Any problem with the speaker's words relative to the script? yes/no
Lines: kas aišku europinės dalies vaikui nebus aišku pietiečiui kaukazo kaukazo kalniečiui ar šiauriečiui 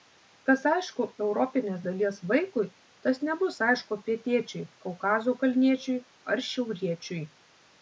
yes